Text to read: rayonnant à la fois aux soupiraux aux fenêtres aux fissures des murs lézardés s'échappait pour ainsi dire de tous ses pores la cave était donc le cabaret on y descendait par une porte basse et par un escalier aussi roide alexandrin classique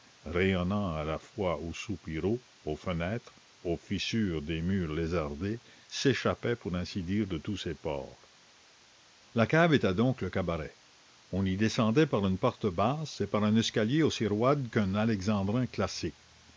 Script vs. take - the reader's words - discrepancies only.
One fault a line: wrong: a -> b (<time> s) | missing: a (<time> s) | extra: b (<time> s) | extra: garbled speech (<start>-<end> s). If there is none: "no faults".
extra: qu'un (14.7 s)